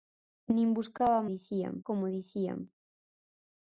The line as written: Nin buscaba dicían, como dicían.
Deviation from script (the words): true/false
false